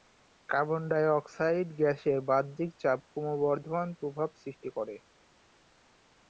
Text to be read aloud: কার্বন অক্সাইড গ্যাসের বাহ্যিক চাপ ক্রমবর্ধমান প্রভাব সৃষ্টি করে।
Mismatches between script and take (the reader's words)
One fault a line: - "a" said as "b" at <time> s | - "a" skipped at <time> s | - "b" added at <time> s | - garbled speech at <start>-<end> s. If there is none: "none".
- "ডাই" added at 0.9 s